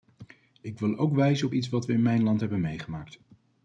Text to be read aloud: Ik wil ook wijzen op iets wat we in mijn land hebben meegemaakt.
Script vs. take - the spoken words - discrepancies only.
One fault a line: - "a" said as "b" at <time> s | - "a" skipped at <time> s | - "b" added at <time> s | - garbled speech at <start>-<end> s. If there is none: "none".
none